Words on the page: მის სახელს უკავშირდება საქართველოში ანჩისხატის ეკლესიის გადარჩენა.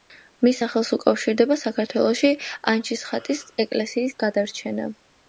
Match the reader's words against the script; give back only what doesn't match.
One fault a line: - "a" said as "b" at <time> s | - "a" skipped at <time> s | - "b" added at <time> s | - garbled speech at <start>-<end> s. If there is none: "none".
none